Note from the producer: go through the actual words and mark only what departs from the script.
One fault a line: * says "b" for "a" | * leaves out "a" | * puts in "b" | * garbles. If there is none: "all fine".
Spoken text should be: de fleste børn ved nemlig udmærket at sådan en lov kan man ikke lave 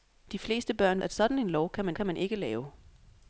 * leaves out "ved nemlig udmærket"
* puts in "kan man"